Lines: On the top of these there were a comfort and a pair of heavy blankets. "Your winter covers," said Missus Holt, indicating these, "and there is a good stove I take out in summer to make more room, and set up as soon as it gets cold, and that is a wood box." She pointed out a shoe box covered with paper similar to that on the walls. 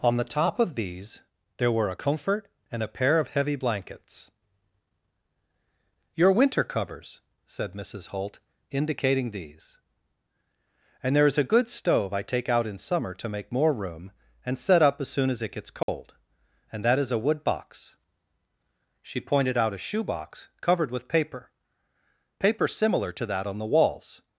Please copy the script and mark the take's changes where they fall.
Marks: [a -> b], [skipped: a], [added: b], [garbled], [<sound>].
On the top of these there were a comfort and a pair of heavy blankets. "Your winter covers," said Missus Holt, indicating these, "and there is a good stove I take out in summer to make more room, and set up as soon as it gets cold, [dropout] and that is a wood box." She pointed out a shoe box covered with paper [added: paper] similar to that on the walls.